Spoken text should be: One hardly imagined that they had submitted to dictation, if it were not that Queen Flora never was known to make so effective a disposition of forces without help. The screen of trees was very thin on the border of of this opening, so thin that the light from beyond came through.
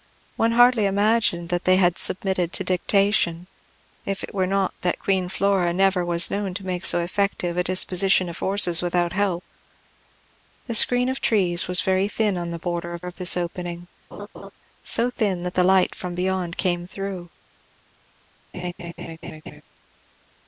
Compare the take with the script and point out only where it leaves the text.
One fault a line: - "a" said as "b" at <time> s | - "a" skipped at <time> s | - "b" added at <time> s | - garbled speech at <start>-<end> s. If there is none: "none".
none